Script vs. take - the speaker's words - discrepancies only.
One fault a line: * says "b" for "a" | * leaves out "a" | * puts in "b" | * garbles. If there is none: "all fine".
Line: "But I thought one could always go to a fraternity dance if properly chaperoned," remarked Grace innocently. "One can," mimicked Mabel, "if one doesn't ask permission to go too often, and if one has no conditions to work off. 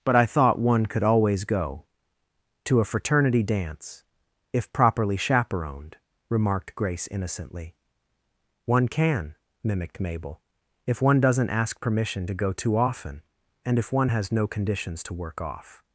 all fine